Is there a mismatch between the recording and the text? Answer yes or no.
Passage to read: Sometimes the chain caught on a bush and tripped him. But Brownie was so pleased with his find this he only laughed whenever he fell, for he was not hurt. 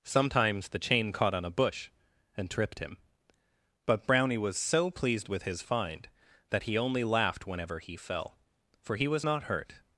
yes